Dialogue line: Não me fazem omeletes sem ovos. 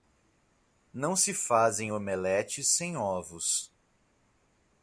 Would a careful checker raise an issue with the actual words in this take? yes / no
yes